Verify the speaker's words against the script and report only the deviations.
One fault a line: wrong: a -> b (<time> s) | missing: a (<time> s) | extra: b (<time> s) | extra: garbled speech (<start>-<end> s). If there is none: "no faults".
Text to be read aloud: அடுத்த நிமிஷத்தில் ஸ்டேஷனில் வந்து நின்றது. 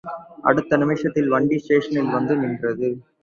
extra: வண்டி (1.3 s)